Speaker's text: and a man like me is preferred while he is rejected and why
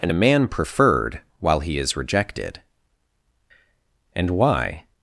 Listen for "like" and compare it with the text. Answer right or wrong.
wrong